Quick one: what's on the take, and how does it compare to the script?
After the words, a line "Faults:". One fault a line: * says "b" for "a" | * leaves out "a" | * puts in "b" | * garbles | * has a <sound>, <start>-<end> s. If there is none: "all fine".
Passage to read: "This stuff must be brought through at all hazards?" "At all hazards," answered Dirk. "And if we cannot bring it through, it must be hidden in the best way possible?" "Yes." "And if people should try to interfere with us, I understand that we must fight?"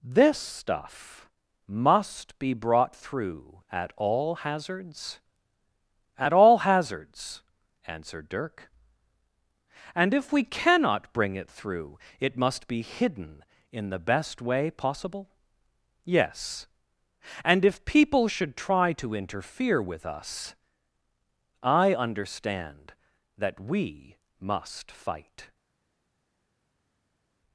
"This stuff must be brought through at all hazards?" "At all hazards," answered Dirk. "And if we cannot bring it through, it must be hidden in the best way possible?" "Yes." "And if people should try to interfere with us, I understand that we must fight?"
Faults:
all fine